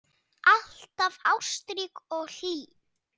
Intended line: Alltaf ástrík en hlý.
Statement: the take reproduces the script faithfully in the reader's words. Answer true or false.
false